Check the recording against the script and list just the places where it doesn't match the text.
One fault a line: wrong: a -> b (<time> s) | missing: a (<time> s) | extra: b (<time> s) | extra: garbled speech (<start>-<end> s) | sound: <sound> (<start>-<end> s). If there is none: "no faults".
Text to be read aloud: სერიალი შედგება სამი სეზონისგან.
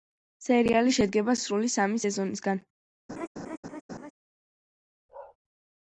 extra: სრული (1.4 s)
sound: laugh (3.1-4.1 s)
sound: bark (5.1-5.4 s)